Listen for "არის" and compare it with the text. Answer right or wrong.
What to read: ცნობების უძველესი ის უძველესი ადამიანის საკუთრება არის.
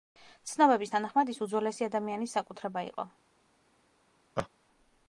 wrong